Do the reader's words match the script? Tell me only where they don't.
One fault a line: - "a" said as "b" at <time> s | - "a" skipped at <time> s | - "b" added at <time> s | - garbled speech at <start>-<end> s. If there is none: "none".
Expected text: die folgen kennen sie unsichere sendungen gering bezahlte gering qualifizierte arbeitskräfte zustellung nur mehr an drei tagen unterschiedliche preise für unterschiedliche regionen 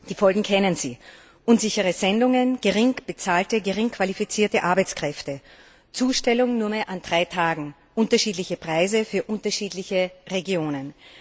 none